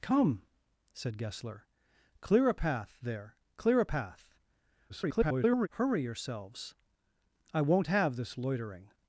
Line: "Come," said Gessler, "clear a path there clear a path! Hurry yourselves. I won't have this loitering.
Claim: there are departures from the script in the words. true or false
true